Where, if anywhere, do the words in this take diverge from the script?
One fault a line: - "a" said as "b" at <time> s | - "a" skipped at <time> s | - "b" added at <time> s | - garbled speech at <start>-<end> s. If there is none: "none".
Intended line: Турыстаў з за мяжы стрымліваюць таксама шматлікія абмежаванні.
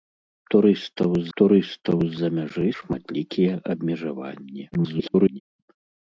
- "турыстаў з" added at 1.4 s
- "стрымліваюць таксама" skipped at 2.7 s
- garbled speech at 4.7-5.4 s